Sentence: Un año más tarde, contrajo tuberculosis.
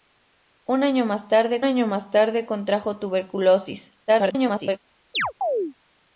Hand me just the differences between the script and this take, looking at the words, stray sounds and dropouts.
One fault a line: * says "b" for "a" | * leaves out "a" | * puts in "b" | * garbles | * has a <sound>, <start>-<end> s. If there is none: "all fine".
* puts in "año más tarde"
* garbles
* has a chirp, 5.1-5.7 s